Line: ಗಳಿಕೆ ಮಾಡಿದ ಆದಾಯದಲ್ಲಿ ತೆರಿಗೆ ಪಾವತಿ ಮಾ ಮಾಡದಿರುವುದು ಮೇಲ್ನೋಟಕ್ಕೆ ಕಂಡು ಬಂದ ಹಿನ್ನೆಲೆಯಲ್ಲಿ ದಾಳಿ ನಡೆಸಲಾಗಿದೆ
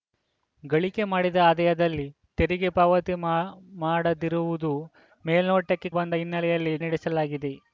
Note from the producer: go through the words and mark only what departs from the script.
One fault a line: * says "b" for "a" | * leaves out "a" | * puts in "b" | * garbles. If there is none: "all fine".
* leaves out "ಕಂಡು"
* leaves out "ದಾಳಿ"